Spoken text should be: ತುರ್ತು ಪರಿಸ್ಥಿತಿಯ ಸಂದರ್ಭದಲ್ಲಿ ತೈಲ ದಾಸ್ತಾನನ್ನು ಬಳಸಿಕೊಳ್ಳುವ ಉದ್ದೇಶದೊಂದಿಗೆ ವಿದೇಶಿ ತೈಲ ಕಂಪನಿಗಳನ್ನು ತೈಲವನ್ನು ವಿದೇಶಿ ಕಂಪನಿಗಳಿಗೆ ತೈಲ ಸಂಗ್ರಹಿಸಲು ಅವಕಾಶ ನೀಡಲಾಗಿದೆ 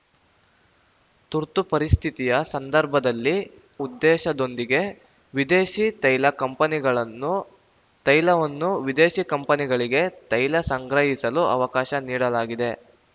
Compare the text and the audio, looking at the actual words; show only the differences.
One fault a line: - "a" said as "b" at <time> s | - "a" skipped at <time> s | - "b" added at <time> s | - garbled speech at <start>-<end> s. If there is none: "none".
- "ತೈಲ ದಾಸ್ತಾನನ್ನು ಬಳಸಿಕೊಳ್ಳುವ" skipped at 3.3 s